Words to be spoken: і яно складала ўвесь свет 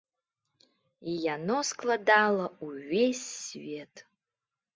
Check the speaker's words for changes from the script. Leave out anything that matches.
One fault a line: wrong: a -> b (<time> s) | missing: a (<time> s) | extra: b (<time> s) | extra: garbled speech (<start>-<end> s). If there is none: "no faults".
no faults